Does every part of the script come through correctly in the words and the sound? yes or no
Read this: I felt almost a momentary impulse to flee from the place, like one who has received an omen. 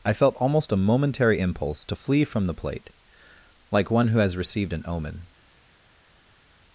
no